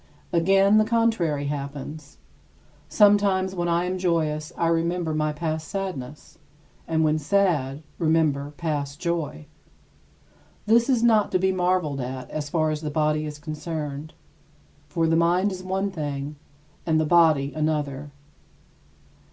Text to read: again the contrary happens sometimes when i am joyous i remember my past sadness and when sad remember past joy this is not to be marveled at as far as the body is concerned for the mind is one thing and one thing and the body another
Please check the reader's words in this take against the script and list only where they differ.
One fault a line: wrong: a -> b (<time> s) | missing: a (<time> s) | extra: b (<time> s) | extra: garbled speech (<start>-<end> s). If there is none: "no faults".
missing: one thing and (17.0 s)